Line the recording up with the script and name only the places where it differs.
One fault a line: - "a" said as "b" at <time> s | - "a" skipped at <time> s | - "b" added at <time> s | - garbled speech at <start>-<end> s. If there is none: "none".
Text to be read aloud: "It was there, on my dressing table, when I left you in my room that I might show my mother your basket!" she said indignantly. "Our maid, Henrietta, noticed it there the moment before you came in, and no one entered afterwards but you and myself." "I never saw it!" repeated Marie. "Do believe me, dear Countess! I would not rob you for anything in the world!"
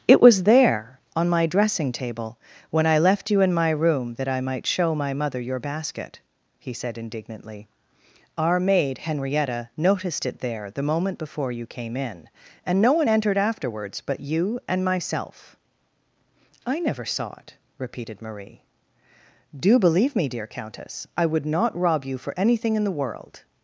- "she" said as "he" at 6.6 s